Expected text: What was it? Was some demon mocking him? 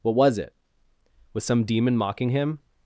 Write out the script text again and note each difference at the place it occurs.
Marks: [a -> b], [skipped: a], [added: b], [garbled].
What was it? Was some demon mocking him?